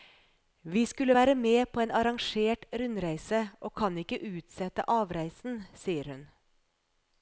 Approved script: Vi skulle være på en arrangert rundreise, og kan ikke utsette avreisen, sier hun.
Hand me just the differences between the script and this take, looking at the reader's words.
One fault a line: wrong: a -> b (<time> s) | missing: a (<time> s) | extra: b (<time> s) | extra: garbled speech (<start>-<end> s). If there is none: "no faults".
extra: med (1.3 s)